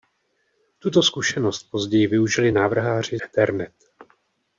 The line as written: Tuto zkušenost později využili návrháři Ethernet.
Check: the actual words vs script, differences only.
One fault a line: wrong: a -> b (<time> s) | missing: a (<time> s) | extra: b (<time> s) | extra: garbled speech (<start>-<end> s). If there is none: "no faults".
no faults